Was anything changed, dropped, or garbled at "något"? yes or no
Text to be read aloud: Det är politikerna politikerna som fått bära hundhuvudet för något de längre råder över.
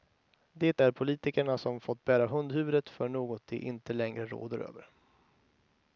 no